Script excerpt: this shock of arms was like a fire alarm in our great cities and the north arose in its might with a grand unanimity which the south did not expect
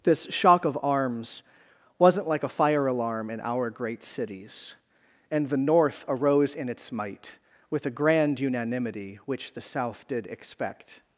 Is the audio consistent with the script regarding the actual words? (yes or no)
no